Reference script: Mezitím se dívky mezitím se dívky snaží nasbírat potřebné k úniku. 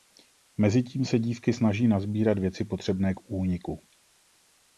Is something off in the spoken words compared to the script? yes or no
yes